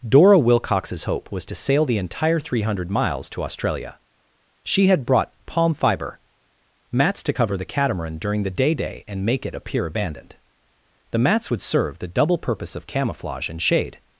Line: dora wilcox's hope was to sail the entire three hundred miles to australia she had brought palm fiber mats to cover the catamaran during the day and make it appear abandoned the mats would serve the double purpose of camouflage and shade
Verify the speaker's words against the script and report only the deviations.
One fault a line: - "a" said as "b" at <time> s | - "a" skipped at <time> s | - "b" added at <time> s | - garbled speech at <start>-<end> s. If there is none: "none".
- "day" added at 8.7 s